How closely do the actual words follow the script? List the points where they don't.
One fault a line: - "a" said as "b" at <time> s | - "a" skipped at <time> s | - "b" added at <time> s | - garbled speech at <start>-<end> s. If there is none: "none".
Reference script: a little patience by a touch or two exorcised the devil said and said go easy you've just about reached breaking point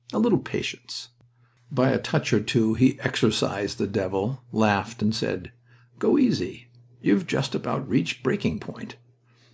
- "he" added at 2.7 s
- "said" said as "laughed" at 4.5 s